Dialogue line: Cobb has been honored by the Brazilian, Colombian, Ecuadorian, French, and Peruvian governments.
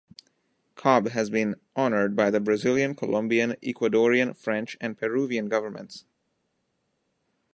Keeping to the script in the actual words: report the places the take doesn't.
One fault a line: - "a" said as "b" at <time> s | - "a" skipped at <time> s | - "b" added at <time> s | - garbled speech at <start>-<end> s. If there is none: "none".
none